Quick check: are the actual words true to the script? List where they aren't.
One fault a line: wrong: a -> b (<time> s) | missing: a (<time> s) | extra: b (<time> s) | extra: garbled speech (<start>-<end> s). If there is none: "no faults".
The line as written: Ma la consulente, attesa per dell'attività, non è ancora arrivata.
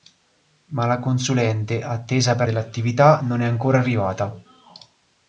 no faults